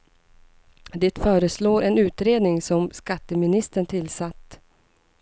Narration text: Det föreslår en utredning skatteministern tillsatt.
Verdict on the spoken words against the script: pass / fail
fail